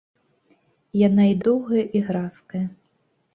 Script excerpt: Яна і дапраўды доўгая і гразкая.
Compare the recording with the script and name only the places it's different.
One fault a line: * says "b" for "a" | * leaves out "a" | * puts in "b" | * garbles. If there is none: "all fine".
* leaves out "дапраўды"